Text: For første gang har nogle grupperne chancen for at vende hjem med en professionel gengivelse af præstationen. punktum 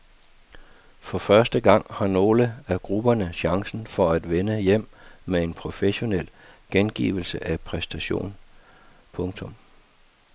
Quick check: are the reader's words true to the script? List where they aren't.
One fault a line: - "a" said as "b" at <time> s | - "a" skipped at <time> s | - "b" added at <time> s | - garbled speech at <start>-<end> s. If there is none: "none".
- "af" added at 2.7 s